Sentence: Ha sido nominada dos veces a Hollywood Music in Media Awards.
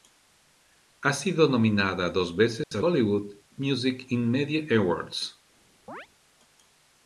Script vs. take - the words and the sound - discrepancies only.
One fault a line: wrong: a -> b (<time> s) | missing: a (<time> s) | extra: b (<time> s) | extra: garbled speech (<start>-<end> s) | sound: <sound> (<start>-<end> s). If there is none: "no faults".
sound: dropout (2.6-2.7 s)
sound: chirp (5.9-6.1 s)